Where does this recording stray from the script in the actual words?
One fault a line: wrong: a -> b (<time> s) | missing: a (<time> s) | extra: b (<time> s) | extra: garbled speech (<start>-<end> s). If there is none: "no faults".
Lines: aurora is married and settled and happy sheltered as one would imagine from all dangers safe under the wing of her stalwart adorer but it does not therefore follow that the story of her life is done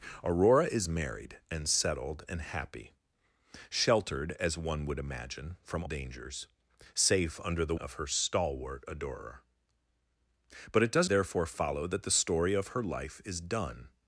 missing: all (5.8 s)
missing: wing (7.7 s)
missing: not (11.1 s)